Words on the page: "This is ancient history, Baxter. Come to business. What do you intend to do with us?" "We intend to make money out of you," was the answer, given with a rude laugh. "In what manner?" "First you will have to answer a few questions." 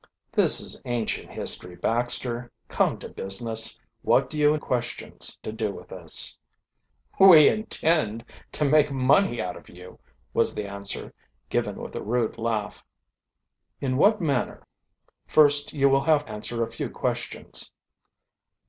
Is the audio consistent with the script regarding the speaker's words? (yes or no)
no